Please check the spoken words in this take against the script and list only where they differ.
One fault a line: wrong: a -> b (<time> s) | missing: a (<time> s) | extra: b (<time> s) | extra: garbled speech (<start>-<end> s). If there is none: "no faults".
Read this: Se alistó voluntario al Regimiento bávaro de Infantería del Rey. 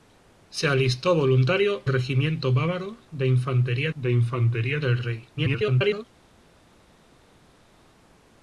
missing: al (1.9 s)
extra: de Infantería (4.0 s)
extra: garbled speech (5.4-6.0 s)